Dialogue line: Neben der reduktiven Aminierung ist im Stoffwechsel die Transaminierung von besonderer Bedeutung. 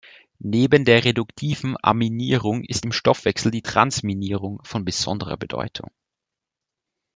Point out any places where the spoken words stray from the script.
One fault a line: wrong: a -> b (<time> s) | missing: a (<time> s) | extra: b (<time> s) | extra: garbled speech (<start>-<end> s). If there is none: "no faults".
no faults